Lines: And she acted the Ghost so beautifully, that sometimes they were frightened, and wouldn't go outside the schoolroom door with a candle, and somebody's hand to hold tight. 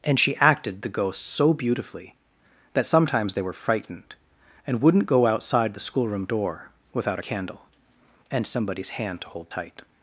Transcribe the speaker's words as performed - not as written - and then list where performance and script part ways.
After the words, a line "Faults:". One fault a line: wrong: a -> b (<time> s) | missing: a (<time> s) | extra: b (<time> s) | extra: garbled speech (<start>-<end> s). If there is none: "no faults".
And she acted the Ghost so beautifully, that sometimes they were frightened, and wouldn't go outside the schoolroom door without a candle, and somebody's hand to hold tight.
Faults:
wrong: with -> without (6.9 s)